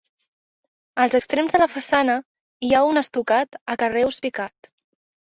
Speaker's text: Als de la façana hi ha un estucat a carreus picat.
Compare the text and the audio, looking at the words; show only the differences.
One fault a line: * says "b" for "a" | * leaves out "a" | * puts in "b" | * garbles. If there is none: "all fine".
* puts in "extrems"